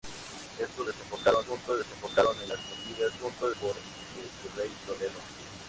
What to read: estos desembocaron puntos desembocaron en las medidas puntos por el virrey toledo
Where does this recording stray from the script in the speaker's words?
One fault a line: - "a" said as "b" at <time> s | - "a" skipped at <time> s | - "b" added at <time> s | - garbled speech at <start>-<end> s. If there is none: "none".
none